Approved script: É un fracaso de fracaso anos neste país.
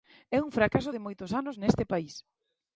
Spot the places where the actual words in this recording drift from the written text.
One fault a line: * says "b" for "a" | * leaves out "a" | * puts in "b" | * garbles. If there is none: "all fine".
* says "moitos" for "fracaso"